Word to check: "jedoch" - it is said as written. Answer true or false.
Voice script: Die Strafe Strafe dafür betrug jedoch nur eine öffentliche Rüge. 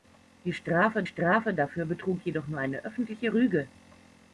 true